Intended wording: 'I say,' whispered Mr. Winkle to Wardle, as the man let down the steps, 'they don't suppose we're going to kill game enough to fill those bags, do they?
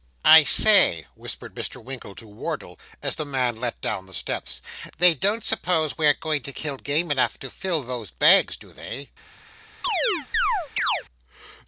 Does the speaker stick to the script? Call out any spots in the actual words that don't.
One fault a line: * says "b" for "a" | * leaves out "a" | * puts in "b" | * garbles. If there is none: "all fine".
all fine